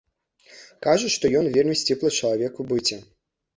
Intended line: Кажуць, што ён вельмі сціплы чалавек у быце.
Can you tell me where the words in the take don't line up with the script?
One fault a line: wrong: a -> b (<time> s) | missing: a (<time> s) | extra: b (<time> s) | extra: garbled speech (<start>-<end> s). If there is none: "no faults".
no faults